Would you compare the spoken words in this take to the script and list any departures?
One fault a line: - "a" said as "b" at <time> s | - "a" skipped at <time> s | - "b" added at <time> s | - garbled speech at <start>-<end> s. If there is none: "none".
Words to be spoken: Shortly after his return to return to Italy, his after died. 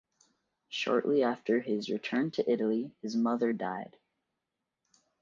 - "return to" skipped at 2.5 s
- "after" said as "mother" at 3.2 s